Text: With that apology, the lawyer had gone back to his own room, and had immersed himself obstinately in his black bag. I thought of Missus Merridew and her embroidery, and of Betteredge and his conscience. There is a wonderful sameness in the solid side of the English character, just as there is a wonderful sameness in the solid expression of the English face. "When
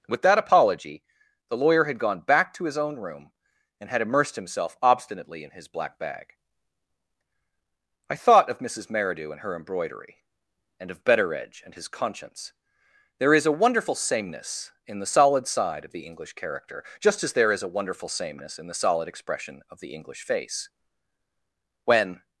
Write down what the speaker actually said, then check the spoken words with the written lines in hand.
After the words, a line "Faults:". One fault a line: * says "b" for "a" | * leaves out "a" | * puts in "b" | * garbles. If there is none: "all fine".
With that apology, the lawyer had gone back to his own room, and had immersed himself obstinately in his black bag. I thought of Missus Merridew and her embroidery, and of Betteredge and his conscience. There is a wonderful sameness in the solid side of the English character, just as there is a wonderful sameness in the solid expression of the English face. "When
Faults:
all fine